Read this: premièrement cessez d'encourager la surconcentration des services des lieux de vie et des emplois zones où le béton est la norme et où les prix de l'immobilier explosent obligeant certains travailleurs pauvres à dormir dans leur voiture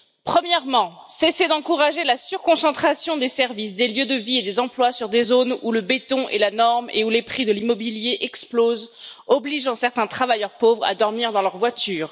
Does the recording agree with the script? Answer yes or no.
no